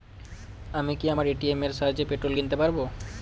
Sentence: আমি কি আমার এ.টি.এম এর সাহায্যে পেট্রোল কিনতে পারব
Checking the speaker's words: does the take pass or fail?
pass